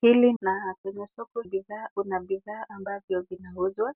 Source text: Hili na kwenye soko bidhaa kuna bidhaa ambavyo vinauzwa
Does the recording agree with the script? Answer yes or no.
yes